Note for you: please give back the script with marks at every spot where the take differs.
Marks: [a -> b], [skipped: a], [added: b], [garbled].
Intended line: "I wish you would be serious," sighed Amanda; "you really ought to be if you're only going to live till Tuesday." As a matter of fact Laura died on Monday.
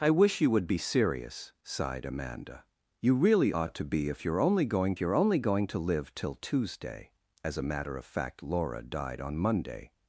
"I wish you would be serious," sighed Amanda; "you really ought to be if you're only going [added: you're only going] to live till Tuesday." As a matter of fact Laura died on Monday.